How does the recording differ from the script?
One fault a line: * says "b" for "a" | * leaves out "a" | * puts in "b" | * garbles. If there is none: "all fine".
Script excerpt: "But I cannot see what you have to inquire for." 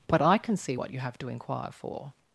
* says "can" for "cannot"